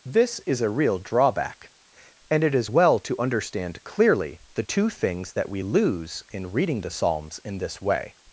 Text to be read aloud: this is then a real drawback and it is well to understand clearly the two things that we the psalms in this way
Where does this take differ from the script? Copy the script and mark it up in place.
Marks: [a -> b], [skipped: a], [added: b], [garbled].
this is [skipped: then] a real drawback and it is well to understand clearly the two things that we [added: lose in reading] the psalms in this way